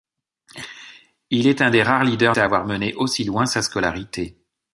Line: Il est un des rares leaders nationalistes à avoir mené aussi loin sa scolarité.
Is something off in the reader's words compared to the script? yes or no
yes